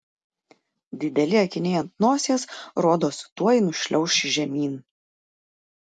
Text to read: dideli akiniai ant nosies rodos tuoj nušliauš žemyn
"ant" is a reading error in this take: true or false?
false